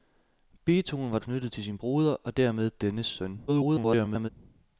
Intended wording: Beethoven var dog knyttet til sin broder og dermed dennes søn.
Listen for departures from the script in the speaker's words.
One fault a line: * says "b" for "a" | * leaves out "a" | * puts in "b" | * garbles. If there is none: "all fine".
* leaves out "dog"
* garbles